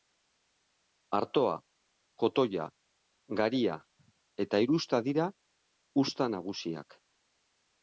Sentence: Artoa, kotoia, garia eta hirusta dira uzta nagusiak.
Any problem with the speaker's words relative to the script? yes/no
no